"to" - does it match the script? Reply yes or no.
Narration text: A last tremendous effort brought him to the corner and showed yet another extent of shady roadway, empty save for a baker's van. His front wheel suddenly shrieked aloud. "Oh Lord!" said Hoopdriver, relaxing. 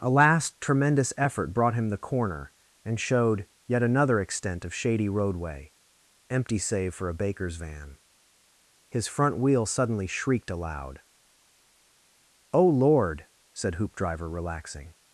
no